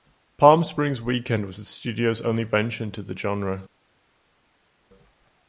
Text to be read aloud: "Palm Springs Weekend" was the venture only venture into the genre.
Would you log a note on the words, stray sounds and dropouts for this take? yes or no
yes